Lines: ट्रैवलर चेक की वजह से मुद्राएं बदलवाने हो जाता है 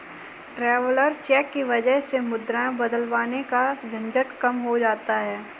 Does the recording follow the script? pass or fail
fail